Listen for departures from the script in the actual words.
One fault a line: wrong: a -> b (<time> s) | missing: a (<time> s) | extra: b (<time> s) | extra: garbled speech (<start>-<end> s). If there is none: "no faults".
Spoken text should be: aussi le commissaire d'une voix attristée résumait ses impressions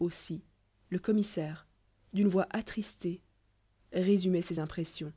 no faults